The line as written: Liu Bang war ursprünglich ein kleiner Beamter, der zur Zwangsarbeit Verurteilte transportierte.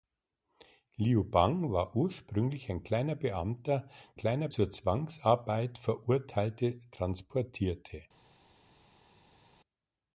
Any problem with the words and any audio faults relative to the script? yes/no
yes